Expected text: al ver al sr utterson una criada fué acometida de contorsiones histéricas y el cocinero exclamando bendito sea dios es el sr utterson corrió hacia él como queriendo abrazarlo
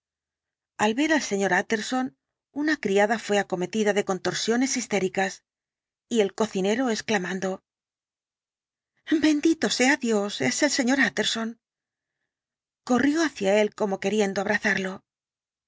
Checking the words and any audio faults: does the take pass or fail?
pass